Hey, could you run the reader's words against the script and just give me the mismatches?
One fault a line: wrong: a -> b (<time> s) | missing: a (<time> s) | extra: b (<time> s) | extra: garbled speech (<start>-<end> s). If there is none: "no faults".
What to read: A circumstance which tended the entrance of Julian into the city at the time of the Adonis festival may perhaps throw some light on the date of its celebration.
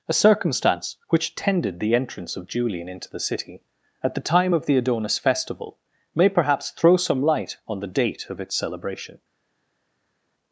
no faults